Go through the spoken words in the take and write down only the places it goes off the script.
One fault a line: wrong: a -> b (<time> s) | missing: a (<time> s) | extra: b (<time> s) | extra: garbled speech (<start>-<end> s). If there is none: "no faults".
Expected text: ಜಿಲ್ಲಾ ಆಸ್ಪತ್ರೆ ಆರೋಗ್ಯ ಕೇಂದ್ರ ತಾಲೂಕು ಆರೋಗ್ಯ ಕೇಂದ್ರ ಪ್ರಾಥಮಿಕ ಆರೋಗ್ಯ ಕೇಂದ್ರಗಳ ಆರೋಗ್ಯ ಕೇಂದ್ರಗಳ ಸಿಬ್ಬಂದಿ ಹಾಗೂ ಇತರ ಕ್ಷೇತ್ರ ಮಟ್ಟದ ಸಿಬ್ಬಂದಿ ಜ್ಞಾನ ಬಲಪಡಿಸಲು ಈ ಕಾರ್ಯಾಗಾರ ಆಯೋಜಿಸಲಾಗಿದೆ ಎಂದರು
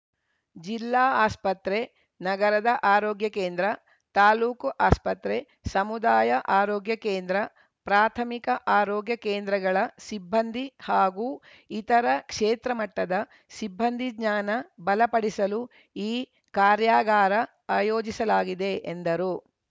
extra: ನಗರದ (2.2 s)
extra: ಆಸ್ಪತ್ರೆ ಸಮುದಾಯ (4.8 s)
missing: ಆರೋಗ್ಯ ಕೇಂದ್ರಗಳ (9.8 s)